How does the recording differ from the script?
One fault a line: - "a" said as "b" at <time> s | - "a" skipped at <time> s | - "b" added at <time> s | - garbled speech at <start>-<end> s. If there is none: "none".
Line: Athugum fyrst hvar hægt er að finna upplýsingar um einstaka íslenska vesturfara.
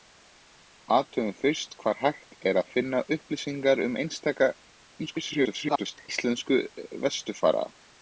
- garbled speech at 5.1-6.1 s